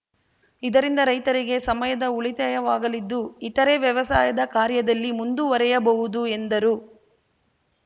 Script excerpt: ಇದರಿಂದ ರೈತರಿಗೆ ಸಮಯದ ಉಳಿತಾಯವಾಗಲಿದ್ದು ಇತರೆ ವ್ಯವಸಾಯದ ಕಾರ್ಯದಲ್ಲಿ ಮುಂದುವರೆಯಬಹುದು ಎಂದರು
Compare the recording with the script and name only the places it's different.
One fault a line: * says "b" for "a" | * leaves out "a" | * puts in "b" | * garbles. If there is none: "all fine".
all fine